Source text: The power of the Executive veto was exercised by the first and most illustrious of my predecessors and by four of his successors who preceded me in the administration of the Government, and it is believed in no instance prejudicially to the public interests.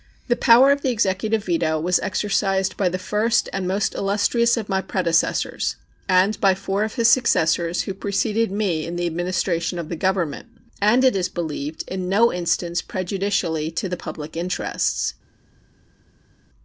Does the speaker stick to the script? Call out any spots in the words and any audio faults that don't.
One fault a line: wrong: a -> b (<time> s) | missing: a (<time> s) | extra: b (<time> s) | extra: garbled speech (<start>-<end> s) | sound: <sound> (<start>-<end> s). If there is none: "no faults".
no faults